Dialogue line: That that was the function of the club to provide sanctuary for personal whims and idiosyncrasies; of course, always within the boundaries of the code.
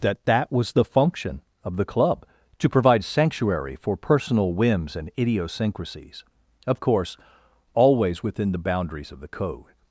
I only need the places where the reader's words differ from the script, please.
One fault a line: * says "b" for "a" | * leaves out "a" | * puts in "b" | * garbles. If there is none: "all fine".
all fine